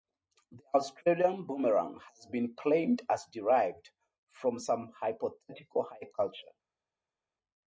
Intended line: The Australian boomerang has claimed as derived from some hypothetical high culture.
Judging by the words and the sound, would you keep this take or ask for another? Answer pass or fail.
fail